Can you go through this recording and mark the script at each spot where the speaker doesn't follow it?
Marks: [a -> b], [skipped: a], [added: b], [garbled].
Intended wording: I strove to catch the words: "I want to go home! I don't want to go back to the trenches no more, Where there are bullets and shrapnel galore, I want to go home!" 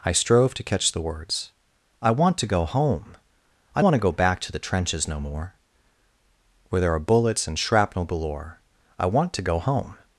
I strove to catch the words: "I want to go home! I [skipped: don't] want to go back to the trenches no more, Where there are bullets and shrapnel galore, I want to go home!"